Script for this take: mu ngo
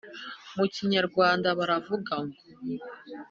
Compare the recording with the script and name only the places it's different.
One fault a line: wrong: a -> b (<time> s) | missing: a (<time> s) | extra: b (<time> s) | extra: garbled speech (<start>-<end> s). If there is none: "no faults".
extra: kinyarwanda baravuga (0.7 s)